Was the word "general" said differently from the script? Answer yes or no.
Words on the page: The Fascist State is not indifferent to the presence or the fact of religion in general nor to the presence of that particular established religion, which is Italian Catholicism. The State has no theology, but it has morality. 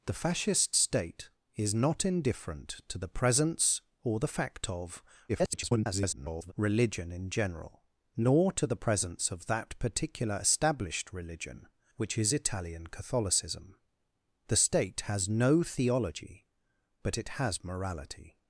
no